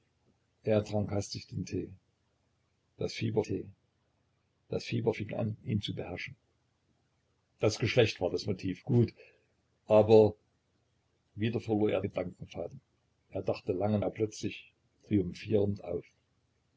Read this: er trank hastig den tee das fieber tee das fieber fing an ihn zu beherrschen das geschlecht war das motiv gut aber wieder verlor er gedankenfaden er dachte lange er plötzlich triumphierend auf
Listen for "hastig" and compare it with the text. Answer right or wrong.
right